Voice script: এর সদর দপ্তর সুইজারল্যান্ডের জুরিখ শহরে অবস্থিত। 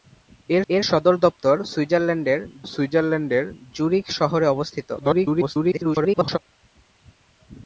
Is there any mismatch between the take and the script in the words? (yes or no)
yes